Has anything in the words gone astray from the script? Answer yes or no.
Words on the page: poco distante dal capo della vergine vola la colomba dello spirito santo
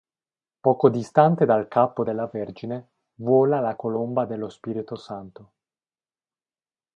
no